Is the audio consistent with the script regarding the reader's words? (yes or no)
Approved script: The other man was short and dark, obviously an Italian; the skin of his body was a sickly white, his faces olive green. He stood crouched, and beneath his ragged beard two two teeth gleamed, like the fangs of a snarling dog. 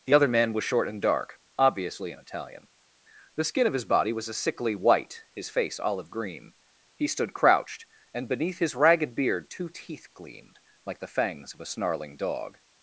no